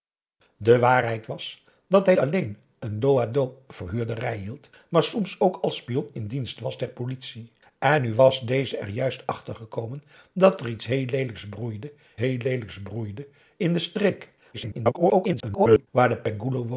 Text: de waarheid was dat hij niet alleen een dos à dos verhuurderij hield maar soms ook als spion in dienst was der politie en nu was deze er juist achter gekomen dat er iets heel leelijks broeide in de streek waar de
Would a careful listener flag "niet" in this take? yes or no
yes